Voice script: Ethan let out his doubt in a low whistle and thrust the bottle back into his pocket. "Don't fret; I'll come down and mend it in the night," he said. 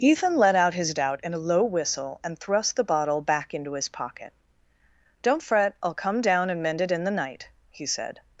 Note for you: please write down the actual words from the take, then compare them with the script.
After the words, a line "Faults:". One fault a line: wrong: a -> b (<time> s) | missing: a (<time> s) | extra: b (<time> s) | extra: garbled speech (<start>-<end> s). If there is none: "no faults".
Ethan let out his doubt in a low whistle and thrust the bottle back into his pocket. "Don't fret; I'll come down and mend it in the night," he said.
Faults:
no faults